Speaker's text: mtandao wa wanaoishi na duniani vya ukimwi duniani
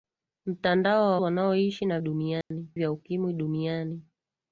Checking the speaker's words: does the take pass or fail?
pass